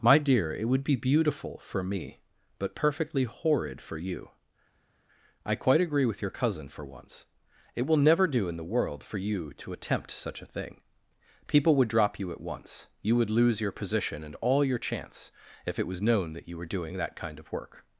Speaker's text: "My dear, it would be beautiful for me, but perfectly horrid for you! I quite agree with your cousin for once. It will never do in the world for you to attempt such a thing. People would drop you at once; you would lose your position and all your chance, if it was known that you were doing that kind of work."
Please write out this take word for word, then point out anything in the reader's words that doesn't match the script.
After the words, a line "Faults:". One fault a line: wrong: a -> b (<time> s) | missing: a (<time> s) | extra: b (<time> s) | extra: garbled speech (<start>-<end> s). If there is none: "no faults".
"My dear, it would be beautiful for me, but perfectly horrid for you! I quite agree with your cousin for once. It will never do in the world for you to attempt such a thing. People would drop you at once; you would lose your position and all your chance, if it was known that you were doing that kind of work."
Faults:
no faults